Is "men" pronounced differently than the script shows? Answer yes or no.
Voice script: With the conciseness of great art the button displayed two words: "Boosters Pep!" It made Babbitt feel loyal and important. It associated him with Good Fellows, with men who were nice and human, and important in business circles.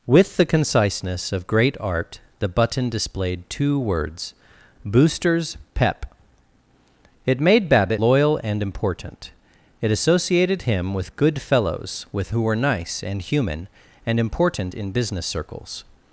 yes